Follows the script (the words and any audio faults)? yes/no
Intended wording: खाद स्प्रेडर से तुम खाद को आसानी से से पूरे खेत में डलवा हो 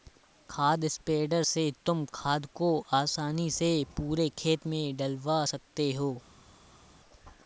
no